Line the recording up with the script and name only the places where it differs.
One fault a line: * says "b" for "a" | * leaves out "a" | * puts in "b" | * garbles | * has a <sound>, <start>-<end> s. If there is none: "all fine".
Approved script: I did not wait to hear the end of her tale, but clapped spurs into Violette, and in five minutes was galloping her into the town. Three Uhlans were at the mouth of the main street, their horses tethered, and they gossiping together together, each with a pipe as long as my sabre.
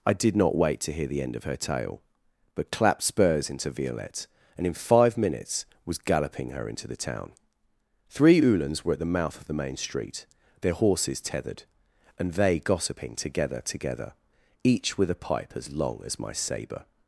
all fine